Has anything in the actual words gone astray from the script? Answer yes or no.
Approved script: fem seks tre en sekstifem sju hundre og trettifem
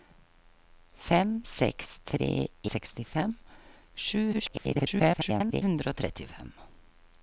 yes